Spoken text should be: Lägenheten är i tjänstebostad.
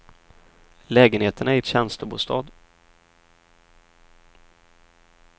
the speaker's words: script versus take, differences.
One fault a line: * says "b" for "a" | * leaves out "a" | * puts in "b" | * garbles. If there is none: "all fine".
all fine